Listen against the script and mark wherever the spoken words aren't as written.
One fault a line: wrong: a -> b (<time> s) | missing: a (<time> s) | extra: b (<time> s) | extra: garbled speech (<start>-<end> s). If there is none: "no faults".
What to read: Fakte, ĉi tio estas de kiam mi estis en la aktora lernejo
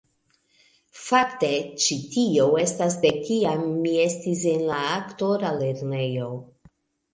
no faults